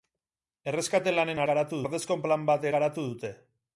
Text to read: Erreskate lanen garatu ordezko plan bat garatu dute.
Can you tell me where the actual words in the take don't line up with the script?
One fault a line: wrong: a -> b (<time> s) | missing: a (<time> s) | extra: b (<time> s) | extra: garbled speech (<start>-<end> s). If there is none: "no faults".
no faults